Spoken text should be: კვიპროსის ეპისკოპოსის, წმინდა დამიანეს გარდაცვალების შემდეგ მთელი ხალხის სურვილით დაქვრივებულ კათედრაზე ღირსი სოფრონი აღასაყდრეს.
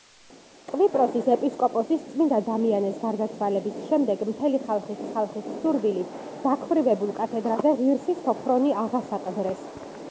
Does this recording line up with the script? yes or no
no